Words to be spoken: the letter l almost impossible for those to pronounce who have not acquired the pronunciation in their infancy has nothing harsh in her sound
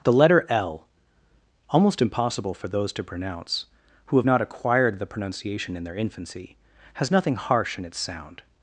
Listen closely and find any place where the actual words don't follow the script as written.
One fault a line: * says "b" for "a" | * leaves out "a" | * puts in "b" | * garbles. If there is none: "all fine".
* says "its" for "her"